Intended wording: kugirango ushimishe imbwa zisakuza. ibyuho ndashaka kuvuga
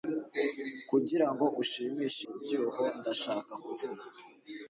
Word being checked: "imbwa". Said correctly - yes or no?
no